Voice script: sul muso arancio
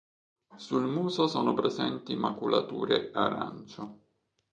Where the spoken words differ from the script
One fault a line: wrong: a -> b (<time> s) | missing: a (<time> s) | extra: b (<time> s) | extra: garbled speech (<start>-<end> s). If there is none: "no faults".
extra: sono presenti maculature (1.3 s)